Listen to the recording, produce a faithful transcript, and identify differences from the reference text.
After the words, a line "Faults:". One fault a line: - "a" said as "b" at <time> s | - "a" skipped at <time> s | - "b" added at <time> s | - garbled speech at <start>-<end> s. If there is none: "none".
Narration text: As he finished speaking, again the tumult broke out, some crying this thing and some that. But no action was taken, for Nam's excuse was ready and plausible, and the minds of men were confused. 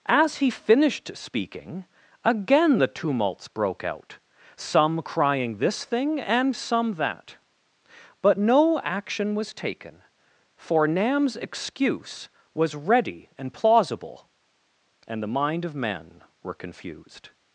As he finished speaking, again the tumults broke out, some crying this thing and some that. But no action was taken, for Nam's excuse was ready and plausible, and the mind of men were confused.
Faults:
- "tumult" said as "tumults" at 2.9 s
- "minds" said as "mind" at 15.3 s